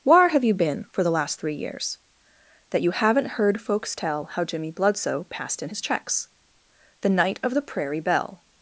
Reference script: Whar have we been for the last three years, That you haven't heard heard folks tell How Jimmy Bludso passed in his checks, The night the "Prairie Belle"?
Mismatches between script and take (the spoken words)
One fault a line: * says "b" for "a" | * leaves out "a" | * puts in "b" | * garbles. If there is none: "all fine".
* says "you" for "we"
* leaves out "heard"
* puts in "of"